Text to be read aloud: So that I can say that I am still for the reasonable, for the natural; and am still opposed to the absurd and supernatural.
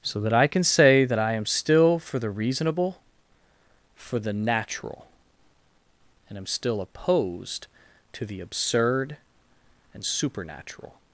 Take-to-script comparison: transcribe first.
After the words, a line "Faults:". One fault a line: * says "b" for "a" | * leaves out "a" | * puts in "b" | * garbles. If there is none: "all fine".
So that I can say that I am still for the reasonable, for the natural; and am still opposed to the absurd and supernatural.
Faults:
all fine